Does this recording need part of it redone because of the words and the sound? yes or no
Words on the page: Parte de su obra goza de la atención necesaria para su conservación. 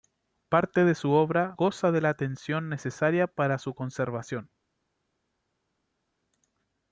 no